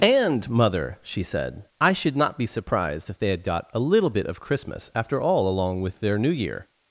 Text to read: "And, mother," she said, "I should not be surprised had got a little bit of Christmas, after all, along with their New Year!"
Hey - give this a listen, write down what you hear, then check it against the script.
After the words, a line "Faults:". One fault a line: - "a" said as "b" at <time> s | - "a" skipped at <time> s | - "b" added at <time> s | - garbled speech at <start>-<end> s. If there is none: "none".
"And, mother," she said, "I should not be surprised if they had got a little bit of Christmas, after all, along with their New Year!"
Faults:
- "if they" added at 3.1 s